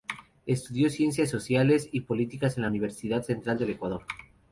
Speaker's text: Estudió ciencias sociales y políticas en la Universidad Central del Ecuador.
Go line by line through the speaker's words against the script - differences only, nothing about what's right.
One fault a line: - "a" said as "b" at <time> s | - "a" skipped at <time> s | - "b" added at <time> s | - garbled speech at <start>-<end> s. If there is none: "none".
none